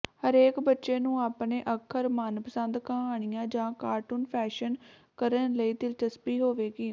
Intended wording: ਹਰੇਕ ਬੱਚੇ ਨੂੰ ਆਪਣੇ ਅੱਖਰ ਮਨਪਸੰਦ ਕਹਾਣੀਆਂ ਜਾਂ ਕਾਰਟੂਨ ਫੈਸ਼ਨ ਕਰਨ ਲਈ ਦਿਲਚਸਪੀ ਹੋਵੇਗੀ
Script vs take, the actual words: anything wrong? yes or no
no